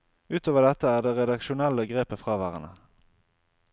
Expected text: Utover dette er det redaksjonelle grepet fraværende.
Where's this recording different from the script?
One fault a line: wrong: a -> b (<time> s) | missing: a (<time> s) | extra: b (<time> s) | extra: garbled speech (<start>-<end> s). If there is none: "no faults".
no faults